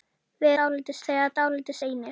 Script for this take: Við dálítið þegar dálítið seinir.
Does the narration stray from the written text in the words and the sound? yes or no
no